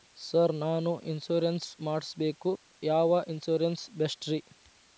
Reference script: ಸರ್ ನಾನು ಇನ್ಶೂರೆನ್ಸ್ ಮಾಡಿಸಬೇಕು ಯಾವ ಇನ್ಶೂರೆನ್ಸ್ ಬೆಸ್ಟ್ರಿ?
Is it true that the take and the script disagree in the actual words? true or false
false